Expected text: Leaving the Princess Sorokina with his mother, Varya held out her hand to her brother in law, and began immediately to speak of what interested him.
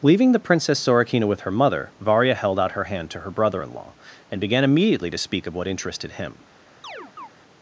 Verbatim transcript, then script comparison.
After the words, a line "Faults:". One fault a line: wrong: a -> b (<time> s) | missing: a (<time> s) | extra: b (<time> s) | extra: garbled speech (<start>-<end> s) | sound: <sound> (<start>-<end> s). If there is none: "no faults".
Leaving the Princess Sorokina with her mother, Varya held out her hand to her brother in law, and began immediately to speak of what interested him.
Faults:
wrong: his -> her (1.4 s)
sound: chirp (6.8-7.3 s)